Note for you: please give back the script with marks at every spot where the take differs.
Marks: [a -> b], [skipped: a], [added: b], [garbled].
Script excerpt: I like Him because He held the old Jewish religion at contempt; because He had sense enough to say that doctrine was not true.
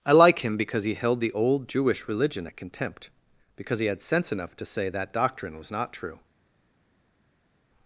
I like Him because He held the old Jewish religion at contempt; because He had sense enough to say that doctrine was not true.